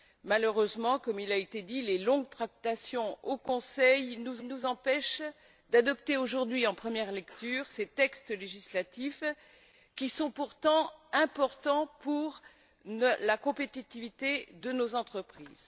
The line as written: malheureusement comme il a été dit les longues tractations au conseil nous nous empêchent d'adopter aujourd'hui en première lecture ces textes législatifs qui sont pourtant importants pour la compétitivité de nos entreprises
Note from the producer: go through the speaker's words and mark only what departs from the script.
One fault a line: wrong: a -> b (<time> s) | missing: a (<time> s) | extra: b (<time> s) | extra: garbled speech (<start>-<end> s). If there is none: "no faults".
no faults